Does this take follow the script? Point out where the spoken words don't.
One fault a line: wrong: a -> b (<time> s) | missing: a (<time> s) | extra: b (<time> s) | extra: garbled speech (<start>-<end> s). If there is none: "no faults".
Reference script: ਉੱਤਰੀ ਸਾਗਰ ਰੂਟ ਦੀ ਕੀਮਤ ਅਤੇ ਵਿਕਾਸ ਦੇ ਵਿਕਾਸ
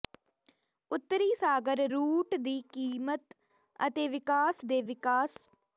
no faults